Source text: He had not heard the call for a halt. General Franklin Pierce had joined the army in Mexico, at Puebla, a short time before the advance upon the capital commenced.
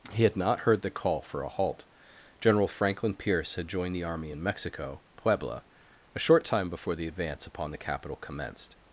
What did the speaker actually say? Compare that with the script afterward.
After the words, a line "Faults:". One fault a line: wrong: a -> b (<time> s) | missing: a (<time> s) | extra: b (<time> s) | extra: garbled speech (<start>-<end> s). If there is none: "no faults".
He had not heard the call for a halt. General Franklin Pierce had joined the army in Mexico, Puebla, a short time before the advance upon the capital commenced.
Faults:
missing: at (5.0 s)